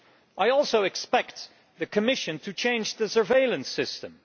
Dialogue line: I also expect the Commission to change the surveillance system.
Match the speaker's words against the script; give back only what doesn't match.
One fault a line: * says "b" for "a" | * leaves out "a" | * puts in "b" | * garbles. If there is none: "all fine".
all fine